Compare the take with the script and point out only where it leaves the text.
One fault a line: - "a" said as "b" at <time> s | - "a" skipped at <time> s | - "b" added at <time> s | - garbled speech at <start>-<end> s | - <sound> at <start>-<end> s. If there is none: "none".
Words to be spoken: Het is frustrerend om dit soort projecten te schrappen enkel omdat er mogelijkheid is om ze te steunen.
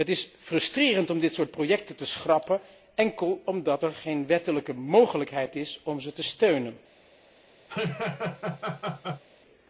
- "geen wettelijke" added at 3.9 s
- laugh at 7.7-9.2 s